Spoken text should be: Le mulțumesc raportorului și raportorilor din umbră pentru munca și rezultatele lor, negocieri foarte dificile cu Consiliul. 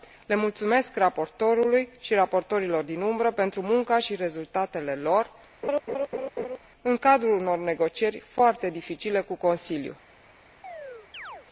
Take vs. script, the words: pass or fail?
fail